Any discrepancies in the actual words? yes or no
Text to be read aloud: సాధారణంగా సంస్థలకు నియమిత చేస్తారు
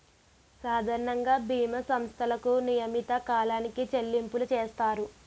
yes